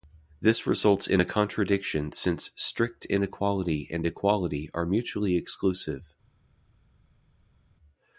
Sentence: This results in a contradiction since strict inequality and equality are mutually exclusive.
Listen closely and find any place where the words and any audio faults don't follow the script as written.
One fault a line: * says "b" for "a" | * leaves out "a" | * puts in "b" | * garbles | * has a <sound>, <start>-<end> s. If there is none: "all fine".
all fine